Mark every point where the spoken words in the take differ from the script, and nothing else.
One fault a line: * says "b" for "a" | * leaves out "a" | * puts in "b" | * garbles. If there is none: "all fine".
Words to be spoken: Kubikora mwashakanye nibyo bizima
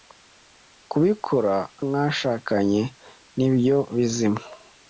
all fine